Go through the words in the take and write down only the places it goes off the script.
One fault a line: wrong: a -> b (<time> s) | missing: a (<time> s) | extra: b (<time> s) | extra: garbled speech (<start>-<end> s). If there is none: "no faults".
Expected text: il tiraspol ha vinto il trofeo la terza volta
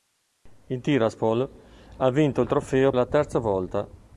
no faults